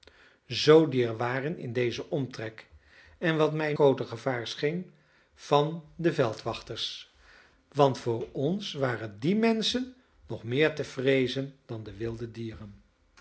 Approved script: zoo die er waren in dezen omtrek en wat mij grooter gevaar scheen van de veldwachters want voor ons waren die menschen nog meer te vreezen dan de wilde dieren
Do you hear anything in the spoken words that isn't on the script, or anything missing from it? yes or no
no